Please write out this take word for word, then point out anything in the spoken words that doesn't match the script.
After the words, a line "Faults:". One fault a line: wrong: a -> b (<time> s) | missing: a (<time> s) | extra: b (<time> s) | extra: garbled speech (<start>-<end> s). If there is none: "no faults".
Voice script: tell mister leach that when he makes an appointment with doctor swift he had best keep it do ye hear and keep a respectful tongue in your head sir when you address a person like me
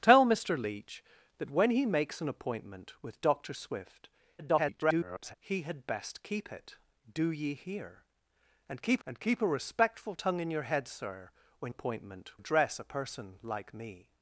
tell mister leach that when he makes an appointment with doctor swift [garbled] he had best keep it do ye hear and keep and keep a respectful tongue in your head sir when appointment address a person like me
Faults:
extra: garbled speech (4.4-5.3 s)
extra: and keep (9.0 s)
wrong: you -> appointment (11.7 s)